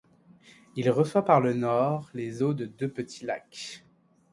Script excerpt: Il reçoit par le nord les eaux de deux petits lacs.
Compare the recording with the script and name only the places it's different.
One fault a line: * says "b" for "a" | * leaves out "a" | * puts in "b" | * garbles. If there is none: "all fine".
all fine